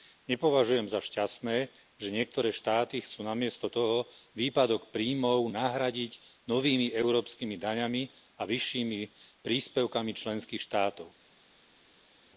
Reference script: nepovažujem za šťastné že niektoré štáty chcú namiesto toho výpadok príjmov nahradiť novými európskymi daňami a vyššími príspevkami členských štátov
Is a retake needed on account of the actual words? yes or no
no